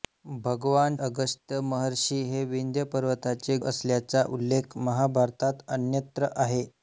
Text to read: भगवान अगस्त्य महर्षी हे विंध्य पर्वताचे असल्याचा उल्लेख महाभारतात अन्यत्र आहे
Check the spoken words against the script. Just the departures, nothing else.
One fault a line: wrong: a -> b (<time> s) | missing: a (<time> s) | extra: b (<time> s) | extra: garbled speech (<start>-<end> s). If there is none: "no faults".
no faults